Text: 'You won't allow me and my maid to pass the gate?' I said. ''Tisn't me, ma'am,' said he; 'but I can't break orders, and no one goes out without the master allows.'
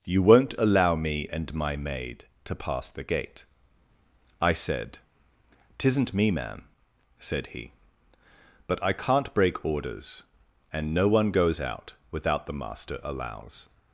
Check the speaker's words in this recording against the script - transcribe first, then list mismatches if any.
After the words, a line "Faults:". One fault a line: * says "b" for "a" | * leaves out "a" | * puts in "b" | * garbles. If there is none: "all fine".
'You won't allow me and my maid to pass the gate?' I said. ''Tisn't me, ma'am,' said he; 'but I can't break orders, and no one goes out without the master allows.'
Faults:
all fine